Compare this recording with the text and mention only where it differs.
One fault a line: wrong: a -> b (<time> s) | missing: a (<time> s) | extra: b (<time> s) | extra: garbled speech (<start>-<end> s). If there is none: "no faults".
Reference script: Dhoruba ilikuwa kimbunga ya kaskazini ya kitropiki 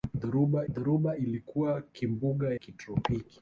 extra: dhoruba (0.7 s)
missing: ya kaskazini ya (2.5 s)